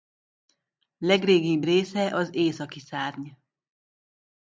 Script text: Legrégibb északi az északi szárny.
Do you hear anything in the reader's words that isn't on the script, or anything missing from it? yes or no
yes